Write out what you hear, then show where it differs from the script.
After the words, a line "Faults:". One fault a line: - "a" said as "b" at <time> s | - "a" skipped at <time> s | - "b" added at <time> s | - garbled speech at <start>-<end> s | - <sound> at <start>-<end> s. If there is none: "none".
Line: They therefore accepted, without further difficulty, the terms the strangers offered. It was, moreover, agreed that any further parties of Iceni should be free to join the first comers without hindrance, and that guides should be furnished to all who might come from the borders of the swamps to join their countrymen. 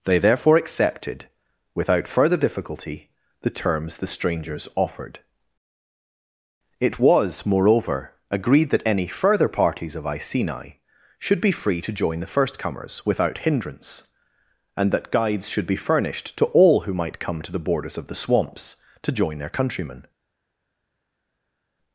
They therefore accepted, without further difficulty, the terms the strangers offered. It was, moreover, agreed that any further parties of Iceni should be free to join the first comers without hindrance, and that guides should be furnished to all who might come to the borders of the swamps to join their countrymen.
Faults:
- "from" said as "to" at 17.4 s